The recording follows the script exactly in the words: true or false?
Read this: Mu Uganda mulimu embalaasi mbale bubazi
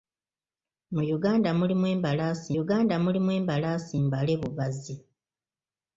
false